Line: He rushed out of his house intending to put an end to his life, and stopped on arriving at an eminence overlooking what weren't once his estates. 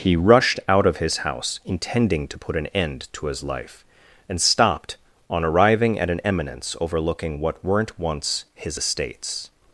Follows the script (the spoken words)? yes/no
yes